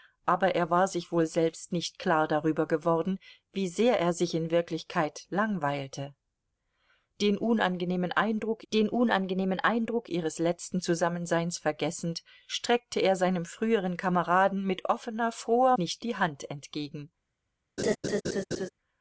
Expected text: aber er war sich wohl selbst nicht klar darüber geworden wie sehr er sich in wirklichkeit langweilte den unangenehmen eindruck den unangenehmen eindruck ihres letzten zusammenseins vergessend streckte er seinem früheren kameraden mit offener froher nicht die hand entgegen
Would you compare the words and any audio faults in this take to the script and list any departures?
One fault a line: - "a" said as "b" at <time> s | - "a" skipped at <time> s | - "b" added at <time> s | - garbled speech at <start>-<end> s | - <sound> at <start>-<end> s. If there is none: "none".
- laugh at 17.8-18.7 s